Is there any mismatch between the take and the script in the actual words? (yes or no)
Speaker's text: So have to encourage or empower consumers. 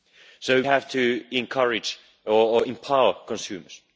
no